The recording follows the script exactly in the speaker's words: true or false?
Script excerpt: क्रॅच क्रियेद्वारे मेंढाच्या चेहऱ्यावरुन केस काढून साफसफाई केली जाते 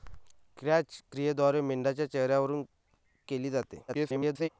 false